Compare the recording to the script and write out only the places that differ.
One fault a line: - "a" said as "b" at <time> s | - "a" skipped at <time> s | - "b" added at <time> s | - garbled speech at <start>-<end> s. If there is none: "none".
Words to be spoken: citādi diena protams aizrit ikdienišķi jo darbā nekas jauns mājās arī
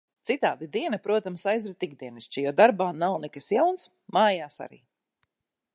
- "nav" added at 3.0 s